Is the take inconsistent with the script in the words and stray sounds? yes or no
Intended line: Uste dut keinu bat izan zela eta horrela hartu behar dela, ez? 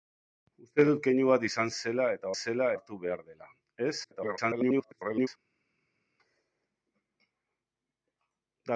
yes